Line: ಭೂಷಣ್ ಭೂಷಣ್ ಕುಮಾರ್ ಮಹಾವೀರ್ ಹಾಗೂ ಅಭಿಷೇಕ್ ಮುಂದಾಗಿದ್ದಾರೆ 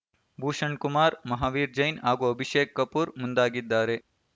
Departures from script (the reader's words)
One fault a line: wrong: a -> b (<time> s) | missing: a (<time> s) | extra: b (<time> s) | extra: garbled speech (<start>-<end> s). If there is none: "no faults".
missing: ಭೂಷಣ್ (0.8 s)
extra: ಜೈನ್ (1.8 s)
extra: ಕಪೂರ್ (2.8 s)